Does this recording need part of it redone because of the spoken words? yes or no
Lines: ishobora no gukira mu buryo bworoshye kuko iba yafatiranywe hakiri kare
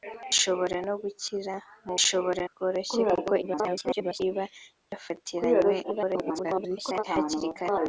yes